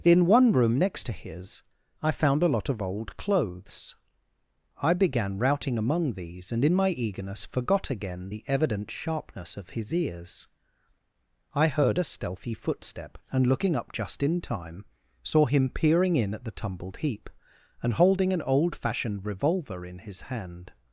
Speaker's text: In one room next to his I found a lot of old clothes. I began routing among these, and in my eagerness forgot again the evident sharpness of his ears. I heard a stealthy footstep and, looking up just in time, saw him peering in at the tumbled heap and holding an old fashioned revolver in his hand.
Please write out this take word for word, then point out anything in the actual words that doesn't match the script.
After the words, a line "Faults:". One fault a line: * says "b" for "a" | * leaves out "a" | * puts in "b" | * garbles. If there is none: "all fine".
In one room next to his I found a lot of old clothes. I began routing among these, and in my eagerness forgot again the evident sharpness of his ears. I heard a stealthy footstep and, looking up just in time, saw him peering in at the tumbled heap and holding an old fashioned revolver in his hand.
Faults:
all fine